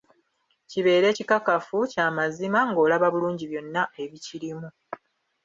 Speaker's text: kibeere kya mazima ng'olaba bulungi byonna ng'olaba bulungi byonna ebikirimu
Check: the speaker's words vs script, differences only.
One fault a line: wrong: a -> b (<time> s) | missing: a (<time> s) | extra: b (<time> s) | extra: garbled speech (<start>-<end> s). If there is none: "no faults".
extra: kikakafu (1.1 s)
missing: ng'olaba bulungi byonna (3.8 s)